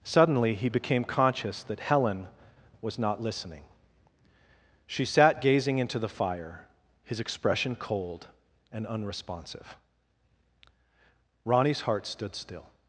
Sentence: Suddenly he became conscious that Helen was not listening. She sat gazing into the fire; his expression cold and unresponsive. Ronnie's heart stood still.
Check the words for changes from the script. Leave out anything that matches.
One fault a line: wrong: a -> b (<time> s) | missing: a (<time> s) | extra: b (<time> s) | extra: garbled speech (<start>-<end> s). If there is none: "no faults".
no faults